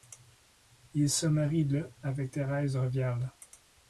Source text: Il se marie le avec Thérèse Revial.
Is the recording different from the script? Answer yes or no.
no